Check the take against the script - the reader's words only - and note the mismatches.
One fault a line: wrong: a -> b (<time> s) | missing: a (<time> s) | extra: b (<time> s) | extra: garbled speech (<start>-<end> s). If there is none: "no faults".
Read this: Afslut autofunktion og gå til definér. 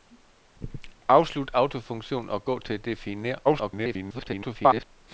extra: garbled speech (3.4-4.8 s)